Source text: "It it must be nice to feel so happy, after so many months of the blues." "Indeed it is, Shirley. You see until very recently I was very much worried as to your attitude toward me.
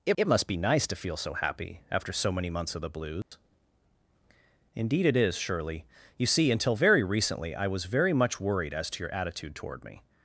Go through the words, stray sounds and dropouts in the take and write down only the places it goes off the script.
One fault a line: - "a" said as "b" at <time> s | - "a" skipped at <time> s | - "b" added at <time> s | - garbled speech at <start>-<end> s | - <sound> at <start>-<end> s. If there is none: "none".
- dropout at 3.2-3.3 s